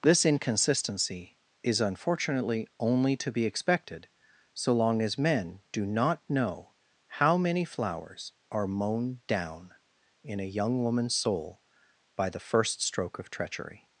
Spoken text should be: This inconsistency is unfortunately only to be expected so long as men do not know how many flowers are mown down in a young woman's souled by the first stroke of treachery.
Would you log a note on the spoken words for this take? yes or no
yes